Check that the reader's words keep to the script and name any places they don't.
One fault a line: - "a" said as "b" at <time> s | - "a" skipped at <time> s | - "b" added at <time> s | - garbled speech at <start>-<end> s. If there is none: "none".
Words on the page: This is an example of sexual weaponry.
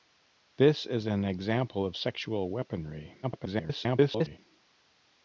- garbled speech at 3.2-4.4 s